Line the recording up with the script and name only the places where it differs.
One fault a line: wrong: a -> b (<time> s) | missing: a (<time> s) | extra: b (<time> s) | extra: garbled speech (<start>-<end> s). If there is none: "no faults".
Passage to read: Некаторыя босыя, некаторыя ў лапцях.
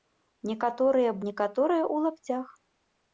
missing: босыя (1.1 s)